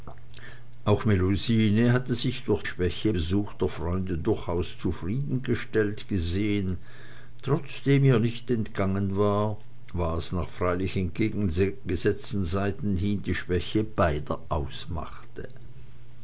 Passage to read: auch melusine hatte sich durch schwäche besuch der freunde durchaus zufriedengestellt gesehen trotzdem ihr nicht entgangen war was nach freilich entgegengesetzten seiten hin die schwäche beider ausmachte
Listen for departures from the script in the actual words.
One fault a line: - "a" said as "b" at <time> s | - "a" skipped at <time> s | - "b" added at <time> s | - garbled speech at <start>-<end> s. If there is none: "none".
none